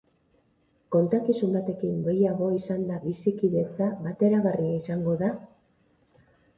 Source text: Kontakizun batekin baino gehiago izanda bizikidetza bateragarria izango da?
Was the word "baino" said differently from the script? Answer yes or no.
yes